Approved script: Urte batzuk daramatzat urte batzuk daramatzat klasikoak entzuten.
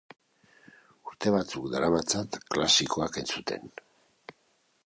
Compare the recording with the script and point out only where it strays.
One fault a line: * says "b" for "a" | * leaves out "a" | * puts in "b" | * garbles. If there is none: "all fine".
* leaves out "urte batzuk daramatzat"